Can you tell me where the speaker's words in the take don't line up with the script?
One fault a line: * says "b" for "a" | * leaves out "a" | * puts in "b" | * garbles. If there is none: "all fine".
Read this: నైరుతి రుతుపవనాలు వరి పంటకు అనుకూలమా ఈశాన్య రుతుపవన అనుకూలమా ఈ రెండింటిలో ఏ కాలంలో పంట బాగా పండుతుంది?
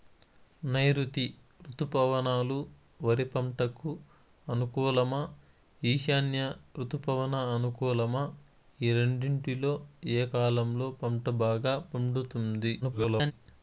* garbles